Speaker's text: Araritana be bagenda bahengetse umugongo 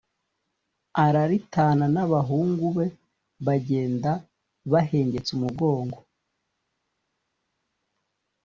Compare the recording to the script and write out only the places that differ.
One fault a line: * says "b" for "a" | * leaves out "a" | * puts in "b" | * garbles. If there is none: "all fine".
* puts in "n'abahungu"